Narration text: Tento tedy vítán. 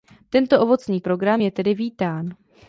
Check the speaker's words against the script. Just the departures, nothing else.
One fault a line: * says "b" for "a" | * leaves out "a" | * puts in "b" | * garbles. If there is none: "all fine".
* puts in "ovocný program je"